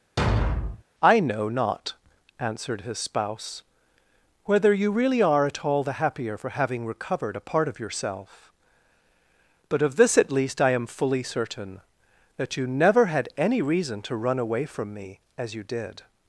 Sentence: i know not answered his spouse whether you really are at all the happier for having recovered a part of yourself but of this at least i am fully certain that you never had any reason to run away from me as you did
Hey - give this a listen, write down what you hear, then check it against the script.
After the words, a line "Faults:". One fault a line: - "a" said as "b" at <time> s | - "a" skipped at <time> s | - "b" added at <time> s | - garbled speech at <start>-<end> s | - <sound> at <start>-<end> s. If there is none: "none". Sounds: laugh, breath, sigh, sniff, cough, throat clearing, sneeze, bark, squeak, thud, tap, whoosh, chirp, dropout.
i know not answered his spouse whether you really are at all the happier for having recovered a part of yourself but of this at least i am fully certain that you never had any reason to run away from me as you did
Faults:
- thud at 0.2-0.8 s